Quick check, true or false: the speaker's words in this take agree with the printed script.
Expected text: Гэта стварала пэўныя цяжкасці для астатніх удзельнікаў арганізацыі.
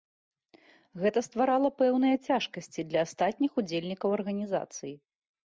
true